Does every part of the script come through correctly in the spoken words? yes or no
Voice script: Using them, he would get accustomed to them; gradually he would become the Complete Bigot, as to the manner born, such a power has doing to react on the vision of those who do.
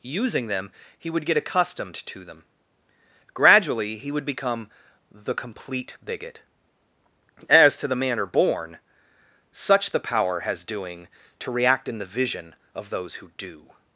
no